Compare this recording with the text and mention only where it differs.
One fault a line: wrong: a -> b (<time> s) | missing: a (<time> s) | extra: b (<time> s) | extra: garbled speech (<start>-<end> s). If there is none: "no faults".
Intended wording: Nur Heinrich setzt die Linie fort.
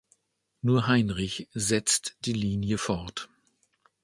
no faults